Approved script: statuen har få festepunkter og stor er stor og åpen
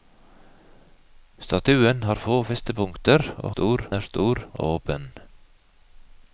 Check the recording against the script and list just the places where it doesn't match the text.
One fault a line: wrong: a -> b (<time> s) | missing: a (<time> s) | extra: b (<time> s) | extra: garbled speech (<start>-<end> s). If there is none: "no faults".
no faults